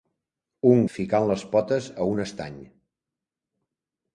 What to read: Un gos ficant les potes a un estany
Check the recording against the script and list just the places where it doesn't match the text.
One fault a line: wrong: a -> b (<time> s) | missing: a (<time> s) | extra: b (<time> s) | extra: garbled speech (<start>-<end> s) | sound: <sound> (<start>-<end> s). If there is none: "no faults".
missing: gos (0.8 s)